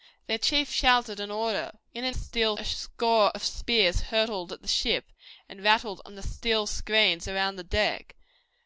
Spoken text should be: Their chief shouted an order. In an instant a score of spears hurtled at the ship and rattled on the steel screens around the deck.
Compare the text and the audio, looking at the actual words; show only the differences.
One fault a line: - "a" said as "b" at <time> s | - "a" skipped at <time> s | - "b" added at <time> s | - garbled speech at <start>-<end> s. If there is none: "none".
- "instant" said as "steel" at 2.1 s